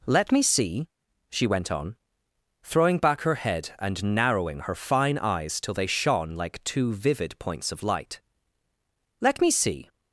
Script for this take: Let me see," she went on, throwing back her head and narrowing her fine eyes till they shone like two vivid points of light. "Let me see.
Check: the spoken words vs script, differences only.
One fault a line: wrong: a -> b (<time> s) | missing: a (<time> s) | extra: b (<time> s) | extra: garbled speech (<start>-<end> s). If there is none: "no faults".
no faults